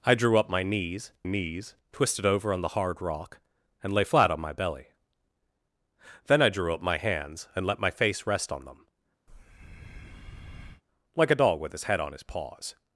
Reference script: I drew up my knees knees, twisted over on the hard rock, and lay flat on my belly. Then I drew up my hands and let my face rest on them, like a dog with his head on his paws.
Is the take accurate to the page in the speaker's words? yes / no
yes